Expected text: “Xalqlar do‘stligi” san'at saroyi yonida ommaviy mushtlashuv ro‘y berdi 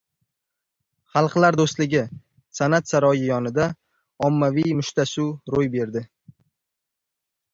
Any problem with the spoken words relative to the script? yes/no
no